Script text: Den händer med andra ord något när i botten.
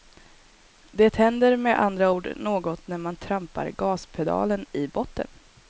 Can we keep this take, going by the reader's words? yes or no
no